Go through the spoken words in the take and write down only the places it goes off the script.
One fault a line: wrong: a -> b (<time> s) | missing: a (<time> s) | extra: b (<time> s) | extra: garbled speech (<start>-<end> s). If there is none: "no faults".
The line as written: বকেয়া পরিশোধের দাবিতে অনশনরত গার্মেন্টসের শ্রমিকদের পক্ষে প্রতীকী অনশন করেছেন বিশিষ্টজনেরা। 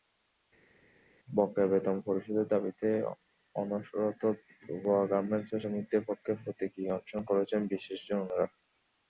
extra: বেতন (1.7 s)
extra: তোবা (4.6 s)